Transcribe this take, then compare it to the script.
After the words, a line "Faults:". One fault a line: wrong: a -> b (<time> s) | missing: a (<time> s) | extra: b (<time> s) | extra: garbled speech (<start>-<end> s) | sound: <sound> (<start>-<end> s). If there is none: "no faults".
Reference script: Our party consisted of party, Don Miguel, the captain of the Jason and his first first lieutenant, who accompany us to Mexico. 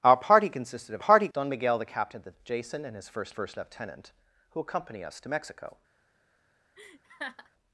Our party consisted of party, Don Miguel, the captain of the Jason and his first first lieutenant, who accompany us to Mexico.
Faults:
sound: laugh (6.8-7.5 s)